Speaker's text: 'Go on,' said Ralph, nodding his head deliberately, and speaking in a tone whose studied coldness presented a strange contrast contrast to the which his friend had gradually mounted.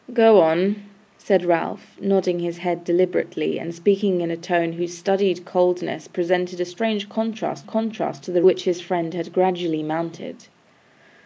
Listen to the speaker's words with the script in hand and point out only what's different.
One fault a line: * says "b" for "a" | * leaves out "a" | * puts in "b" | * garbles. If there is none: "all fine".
all fine